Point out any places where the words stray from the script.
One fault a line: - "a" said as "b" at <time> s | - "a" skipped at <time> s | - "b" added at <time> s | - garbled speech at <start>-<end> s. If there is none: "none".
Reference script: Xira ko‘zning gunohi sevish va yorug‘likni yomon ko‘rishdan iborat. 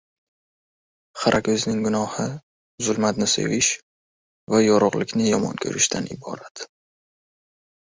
- "zulmatni" added at 2.9 s